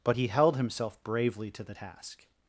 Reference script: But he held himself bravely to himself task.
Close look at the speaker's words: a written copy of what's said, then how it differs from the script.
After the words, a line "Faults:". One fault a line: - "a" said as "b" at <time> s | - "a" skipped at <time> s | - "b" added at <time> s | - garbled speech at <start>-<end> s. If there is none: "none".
But he held himself bravely to the task.
Faults:
- "himself" said as "the" at 1.6 s